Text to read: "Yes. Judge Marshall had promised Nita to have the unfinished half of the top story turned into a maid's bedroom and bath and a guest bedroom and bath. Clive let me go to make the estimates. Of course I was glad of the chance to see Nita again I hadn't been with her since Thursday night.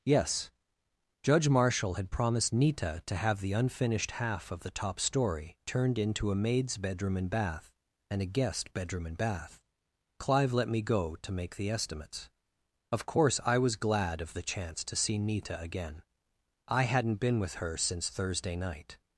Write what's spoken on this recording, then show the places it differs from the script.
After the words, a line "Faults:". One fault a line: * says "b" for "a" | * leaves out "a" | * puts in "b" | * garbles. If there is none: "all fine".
"Yes. Judge Marshall had promised Nita to have the unfinished half of the top story turned into a maid's bedroom and bath and a guest bedroom and bath. Clive let me go to make the estimates. Of course I was glad of the chance to see Nita again I hadn't been with her since Thursday night.
Faults:
all fine